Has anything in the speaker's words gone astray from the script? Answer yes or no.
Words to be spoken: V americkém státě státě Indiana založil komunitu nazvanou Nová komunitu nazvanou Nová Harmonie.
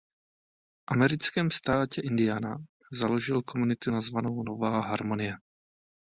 yes